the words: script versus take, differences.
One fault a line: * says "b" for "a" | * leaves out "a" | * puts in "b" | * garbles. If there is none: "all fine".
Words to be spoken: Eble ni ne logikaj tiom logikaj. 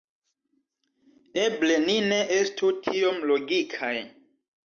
* says "estu" for "logikaj"